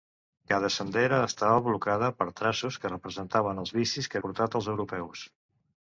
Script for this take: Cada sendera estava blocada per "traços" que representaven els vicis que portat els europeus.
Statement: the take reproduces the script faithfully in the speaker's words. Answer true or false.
true